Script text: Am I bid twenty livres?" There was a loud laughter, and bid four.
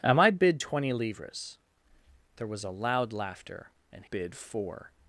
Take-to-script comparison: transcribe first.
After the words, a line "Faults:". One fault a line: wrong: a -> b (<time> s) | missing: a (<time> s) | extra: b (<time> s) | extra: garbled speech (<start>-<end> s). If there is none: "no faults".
Am I bid twenty livres?" There was a loud laughter, and bid four.
Faults:
no faults